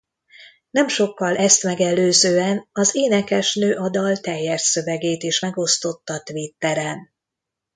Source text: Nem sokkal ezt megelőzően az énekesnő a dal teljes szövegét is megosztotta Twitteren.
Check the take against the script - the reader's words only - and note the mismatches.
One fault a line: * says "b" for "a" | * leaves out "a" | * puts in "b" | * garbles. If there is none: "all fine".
all fine